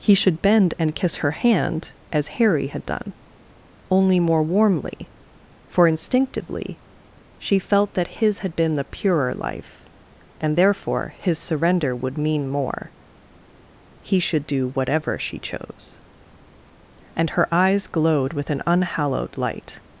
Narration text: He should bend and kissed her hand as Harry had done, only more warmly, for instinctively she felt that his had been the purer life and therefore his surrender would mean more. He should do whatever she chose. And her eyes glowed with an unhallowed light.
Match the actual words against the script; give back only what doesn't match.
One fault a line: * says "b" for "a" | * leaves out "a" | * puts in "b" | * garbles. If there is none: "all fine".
* says "kiss" for "kissed"